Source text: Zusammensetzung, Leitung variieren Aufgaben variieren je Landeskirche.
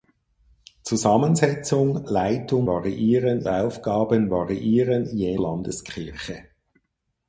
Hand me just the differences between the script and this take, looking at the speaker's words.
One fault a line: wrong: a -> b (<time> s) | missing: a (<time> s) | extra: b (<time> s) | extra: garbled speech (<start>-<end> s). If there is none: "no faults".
no faults